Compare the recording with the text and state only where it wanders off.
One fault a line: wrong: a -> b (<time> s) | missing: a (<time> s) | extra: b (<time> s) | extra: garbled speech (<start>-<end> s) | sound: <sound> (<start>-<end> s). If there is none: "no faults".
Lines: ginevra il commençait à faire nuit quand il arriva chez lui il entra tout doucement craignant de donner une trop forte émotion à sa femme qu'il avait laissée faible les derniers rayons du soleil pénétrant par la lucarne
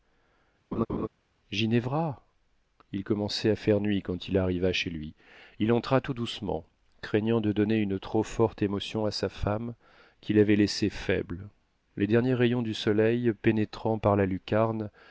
sound: laugh (0.7-1.1 s)